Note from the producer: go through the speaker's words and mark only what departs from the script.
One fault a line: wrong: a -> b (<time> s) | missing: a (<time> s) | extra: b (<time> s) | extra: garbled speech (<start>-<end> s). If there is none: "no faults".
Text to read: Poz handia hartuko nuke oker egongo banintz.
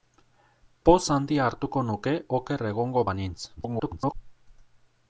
extra: garbled speech (3.6-4.1 s)